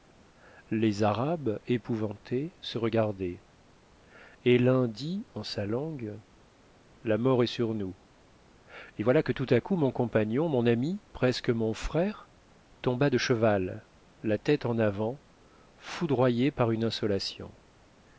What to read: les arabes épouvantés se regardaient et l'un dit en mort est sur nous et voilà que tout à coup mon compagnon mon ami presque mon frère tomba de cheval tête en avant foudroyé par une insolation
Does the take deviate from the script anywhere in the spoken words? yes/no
yes